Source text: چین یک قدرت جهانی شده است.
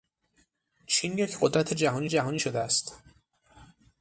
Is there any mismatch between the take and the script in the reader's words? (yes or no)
yes